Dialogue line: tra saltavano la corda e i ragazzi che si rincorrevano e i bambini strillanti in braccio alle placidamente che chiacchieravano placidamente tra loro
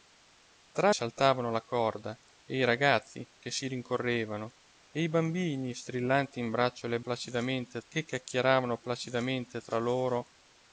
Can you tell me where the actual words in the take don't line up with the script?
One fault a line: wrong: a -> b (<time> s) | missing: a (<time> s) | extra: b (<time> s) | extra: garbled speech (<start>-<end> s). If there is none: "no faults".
no faults